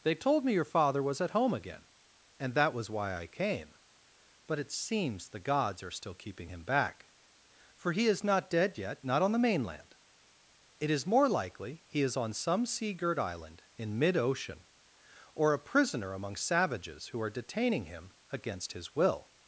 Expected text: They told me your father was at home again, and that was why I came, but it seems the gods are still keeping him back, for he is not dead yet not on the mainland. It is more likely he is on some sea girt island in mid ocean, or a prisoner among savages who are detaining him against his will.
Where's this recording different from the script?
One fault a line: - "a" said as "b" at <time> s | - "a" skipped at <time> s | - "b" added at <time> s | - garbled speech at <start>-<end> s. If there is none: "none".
none